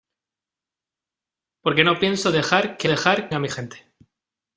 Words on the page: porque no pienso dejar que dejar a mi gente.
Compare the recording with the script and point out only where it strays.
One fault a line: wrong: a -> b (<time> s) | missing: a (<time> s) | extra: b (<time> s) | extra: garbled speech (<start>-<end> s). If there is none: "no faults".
no faults